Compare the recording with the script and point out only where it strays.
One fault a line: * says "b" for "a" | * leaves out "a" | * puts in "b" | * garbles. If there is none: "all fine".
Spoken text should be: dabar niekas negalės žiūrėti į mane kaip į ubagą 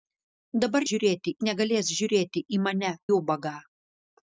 * says "žiūrėti" for "niekas"
* leaves out "kaip"